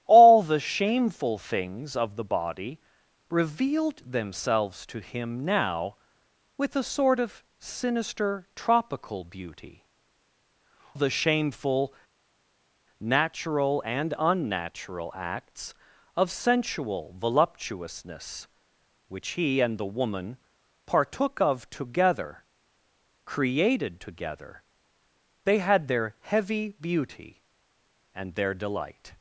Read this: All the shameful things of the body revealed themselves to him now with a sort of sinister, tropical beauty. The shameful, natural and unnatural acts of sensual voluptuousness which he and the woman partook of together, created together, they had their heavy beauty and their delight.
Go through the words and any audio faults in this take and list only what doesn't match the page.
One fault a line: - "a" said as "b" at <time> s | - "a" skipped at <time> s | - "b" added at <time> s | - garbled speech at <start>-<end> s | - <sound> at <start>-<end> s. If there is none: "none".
none